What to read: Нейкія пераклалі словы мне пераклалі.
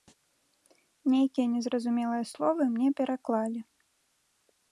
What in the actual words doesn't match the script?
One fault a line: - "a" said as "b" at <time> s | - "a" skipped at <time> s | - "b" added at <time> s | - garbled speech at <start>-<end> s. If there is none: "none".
- "пераклалі" said as "незразумелыя" at 1.6 s